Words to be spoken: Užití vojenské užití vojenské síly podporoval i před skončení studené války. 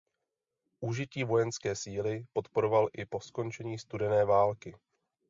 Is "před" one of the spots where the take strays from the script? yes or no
yes